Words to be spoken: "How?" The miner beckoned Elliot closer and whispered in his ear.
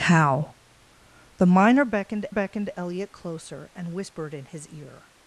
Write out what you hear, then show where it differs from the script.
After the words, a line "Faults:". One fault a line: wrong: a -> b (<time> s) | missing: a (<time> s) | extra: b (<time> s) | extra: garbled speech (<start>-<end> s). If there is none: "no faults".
"How?" The miner beckoned beckoned Elliot closer and whispered in his ear.
Faults:
extra: beckoned (2.3 s)